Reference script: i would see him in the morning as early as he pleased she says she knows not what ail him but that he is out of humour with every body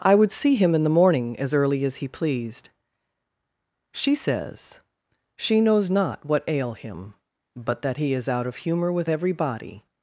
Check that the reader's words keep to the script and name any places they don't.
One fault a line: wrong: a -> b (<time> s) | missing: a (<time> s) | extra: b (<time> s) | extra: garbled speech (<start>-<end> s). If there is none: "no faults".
no faults